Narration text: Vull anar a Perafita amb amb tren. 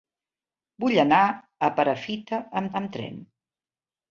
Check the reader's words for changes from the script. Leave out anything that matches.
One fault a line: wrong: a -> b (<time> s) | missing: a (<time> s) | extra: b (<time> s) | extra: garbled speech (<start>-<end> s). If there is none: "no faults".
no faults